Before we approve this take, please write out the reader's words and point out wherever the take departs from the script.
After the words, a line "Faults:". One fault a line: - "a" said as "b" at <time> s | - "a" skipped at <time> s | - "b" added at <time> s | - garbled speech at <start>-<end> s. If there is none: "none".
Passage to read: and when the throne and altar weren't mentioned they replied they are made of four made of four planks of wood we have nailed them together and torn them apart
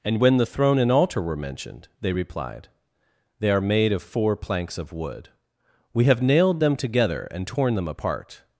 and when the throne and altar were mentioned they replied they are made of four planks of wood we have nailed them together and torn them apart
Faults:
- "weren't" said as "were" at 1.2 s
- "made of four" skipped at 4.4 s